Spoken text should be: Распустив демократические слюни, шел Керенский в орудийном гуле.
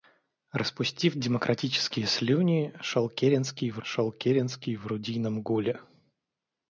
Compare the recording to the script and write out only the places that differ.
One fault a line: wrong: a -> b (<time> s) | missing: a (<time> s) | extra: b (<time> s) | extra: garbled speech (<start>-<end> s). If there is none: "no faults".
extra: шел Керенский в (3.8 s)